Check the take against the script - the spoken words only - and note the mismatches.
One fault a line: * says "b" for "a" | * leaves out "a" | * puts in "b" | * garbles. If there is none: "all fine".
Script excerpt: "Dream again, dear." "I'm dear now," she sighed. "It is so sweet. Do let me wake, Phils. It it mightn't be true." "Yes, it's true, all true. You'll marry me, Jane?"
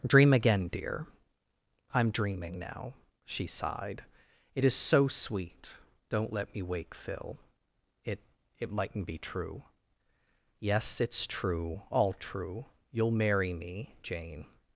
* says "dreaming" for "dear"
* says "Don't" for "Do"
* says "Phil" for "Phils"